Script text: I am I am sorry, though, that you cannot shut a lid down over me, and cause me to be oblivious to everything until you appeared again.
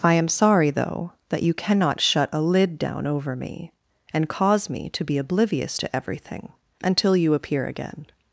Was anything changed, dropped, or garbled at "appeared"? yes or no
yes